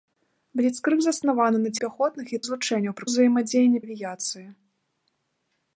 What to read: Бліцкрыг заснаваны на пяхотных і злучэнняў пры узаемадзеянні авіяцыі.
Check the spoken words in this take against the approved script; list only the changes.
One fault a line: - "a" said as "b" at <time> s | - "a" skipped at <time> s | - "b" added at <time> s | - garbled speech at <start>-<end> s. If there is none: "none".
none